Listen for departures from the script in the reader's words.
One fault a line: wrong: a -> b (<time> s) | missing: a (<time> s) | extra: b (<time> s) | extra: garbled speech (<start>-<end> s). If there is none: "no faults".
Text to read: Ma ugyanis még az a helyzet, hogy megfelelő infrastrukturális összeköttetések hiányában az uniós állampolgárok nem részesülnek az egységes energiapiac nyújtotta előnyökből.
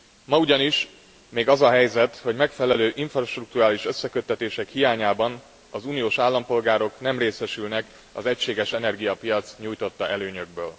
no faults